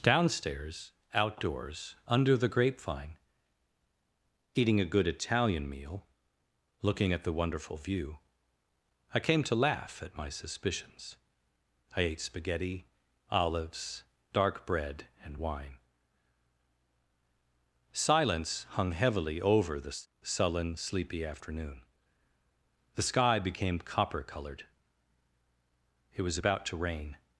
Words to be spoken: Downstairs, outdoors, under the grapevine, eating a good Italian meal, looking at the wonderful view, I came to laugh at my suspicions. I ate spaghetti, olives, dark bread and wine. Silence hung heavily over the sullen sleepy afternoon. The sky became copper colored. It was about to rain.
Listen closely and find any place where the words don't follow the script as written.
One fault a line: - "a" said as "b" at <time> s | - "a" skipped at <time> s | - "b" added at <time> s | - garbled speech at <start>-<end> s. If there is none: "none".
none